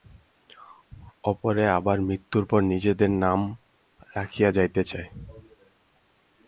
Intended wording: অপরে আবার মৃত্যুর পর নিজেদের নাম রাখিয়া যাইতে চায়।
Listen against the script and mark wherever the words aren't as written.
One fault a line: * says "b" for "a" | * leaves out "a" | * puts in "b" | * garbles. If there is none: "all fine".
all fine